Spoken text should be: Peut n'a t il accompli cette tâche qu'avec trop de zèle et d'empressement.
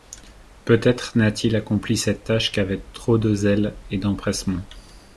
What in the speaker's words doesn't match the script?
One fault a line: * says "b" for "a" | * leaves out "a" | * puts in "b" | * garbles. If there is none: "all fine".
* puts in "être"